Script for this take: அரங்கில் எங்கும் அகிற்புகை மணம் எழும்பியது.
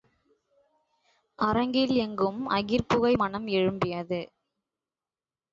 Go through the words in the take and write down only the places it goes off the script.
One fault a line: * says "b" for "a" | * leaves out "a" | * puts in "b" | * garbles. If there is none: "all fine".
all fine